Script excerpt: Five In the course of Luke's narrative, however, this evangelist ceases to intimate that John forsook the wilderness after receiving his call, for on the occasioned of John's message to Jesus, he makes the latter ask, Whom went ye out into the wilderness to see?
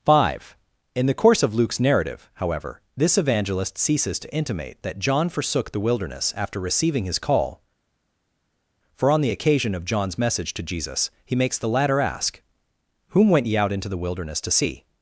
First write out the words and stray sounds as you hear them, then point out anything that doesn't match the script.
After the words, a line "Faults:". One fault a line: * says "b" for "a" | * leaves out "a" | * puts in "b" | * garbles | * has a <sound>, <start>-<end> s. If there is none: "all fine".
Five In the course of Luke's narrative, however, this evangelist ceases to intimate that John forsook the wilderness after receiving his call, for on the occasion of John's message to Jesus, he makes the latter ask, Whom went ye out into the wilderness to see?
Faults:
* says "occasion" for "occasioned"